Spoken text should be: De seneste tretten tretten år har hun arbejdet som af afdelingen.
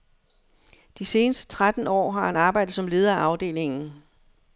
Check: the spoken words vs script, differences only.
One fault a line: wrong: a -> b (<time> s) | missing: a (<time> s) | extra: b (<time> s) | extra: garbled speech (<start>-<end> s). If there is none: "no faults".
missing: tretten (1.9 s)
wrong: hun -> han (2.2 s)
extra: leder (2.9 s)